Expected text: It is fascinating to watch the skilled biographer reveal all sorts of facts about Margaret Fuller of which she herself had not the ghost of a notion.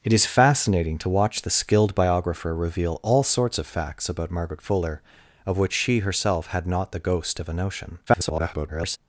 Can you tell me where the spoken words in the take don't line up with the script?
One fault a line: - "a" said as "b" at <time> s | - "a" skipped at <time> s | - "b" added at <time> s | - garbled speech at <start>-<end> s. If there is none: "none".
- garbled speech at 8.1-9.0 s